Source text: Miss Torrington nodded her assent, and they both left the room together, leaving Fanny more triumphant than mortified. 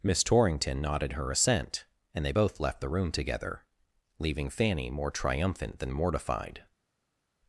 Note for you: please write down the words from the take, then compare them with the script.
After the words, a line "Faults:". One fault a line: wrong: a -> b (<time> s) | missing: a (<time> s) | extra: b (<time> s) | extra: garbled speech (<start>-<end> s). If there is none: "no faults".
Miss Torrington nodded her assent, and they both left the room together, leaving Fanny more triumphant than mortified.
Faults:
no faults